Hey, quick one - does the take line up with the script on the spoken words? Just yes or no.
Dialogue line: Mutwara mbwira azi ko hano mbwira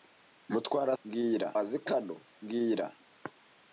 yes